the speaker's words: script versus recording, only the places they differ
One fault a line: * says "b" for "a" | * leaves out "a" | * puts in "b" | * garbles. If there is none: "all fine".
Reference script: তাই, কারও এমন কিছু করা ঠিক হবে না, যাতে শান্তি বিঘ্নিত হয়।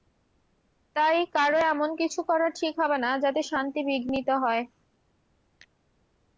all fine